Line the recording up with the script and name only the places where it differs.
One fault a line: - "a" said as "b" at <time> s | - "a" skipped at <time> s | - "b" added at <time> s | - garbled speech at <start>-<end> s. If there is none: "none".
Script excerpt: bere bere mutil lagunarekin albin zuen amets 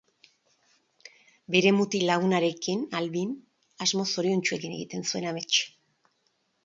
- "bere" skipped at 1.7 s
- "asmo zoriontsuekin egiten" added at 3.9 s